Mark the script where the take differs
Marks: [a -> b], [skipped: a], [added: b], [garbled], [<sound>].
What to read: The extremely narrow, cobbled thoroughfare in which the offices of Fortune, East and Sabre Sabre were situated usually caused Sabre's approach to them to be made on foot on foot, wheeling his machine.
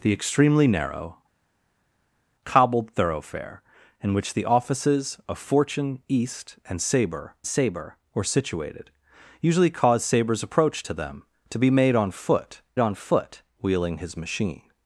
The extremely narrow, cobbled thoroughfare in which the offices of Fortune, East and Sabre Sabre were situated usually caused Sabre's approach to them to be made on foot on foot, wheeling his machine.